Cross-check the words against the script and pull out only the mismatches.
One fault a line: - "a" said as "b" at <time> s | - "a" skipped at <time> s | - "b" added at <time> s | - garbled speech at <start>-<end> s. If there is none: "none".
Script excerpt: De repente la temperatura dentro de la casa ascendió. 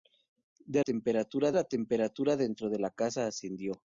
- "repente" said as "temperatura" at 0.8 s